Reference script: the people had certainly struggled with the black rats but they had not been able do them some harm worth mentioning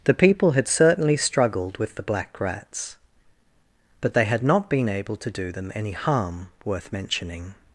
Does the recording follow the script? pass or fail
fail